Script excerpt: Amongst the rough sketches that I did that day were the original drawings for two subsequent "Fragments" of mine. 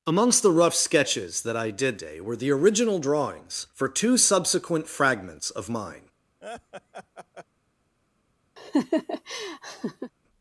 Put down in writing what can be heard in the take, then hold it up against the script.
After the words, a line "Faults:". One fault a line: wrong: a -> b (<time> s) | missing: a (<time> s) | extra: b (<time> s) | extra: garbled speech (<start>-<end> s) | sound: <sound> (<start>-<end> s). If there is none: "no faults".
Amongst the rough sketches that I did day were the original drawings for two subsequent "Fragments" of mine.
Faults:
missing: that (2.0 s)
sound: laugh (6.4-7.5 s)
sound: laugh (8.6-10.1 s)